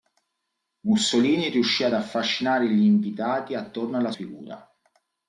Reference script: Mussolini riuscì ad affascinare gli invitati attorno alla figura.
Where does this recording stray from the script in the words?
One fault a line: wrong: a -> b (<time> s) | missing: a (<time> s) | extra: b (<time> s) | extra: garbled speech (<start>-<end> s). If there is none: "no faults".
no faults